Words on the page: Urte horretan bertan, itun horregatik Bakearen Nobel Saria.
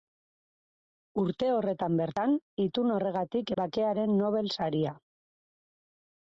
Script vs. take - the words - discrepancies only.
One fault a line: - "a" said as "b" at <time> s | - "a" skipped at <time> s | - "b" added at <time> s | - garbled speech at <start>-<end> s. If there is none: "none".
none